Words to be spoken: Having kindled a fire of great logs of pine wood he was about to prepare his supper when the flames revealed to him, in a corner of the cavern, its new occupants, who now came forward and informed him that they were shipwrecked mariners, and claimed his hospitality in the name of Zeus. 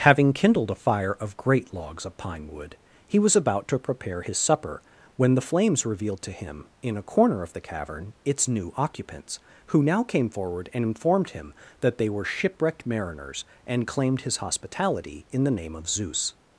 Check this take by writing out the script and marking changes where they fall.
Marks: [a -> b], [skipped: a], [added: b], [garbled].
Having kindled a fire of great logs of pine wood he was about to prepare his supper when the flames revealed to him, in a corner of the cavern, its new occupants, who now came forward and informed him that they were shipwrecked mariners, and claimed his hospitality in the name of Zeus.